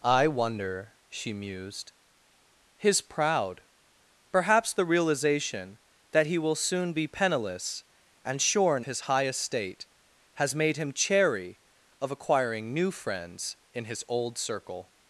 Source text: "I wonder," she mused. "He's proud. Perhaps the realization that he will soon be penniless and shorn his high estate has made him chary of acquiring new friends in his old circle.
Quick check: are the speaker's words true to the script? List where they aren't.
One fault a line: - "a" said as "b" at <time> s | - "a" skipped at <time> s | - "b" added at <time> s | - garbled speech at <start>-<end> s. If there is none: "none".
none